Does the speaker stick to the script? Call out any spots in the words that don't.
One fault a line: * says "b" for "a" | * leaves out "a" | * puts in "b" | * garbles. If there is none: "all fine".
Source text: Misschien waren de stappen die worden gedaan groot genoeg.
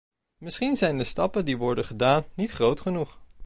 * says "zijn" for "waren"
* puts in "niet"